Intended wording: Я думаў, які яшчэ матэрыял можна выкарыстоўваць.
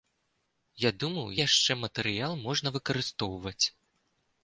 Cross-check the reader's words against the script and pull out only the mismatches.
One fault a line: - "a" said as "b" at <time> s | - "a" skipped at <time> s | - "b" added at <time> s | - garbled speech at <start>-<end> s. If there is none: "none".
- "які" skipped at 1.3 s